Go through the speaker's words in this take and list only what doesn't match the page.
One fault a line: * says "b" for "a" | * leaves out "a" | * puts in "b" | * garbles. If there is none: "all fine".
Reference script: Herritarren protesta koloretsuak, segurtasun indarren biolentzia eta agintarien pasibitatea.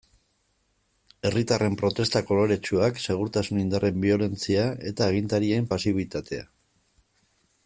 all fine